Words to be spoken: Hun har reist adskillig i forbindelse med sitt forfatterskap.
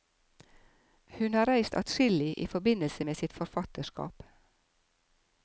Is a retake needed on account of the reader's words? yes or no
no